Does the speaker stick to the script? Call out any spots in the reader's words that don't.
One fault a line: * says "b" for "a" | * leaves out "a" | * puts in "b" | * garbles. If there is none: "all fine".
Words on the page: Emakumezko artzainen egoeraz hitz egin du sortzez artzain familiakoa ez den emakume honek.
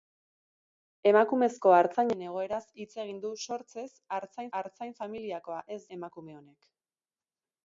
* puts in "artzain"
* leaves out "den"